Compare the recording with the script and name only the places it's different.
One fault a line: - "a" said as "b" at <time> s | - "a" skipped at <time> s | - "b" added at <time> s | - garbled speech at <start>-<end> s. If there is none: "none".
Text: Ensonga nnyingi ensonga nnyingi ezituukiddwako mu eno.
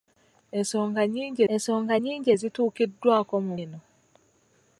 none